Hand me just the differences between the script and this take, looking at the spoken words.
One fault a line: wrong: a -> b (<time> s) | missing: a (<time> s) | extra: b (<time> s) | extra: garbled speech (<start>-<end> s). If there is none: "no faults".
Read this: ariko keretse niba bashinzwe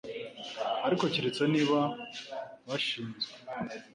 no faults